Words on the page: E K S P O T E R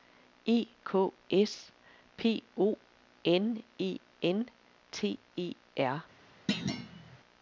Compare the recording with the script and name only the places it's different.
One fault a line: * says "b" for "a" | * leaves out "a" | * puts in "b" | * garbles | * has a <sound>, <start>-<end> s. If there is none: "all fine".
* puts in "N E N"
* has a thud, 6.5-7.2 s